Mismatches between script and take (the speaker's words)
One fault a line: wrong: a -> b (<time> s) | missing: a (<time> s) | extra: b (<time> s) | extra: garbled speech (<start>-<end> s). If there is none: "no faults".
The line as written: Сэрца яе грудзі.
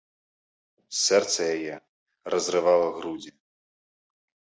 extra: разрывала (2.4 s)